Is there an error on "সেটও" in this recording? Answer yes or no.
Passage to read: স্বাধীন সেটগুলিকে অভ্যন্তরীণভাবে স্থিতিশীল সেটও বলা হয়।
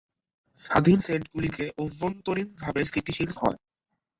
yes